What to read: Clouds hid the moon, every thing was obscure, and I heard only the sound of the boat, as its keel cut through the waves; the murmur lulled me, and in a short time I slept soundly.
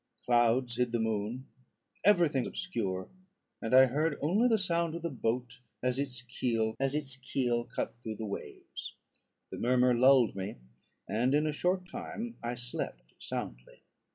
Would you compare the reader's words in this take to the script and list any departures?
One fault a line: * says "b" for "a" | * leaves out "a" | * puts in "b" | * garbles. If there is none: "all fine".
* leaves out "was"
* puts in "as its keel"